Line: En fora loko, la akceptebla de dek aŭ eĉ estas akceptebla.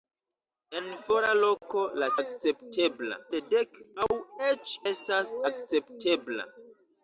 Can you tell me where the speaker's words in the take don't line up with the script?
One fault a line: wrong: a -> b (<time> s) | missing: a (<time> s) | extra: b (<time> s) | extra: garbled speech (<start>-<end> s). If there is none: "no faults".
no faults